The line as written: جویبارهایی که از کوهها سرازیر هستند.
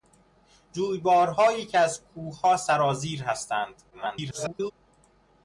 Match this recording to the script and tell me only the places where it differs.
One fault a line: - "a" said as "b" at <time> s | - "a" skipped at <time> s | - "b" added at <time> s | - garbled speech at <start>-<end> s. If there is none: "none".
- garbled speech at 3.9-4.7 s